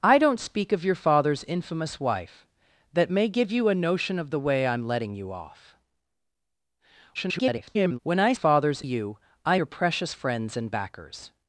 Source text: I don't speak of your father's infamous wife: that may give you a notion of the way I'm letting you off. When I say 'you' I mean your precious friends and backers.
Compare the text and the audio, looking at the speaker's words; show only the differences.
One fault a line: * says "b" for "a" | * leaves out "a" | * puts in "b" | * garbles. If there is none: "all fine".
* garbles
* says "father's" for "say"
* leaves out "mean"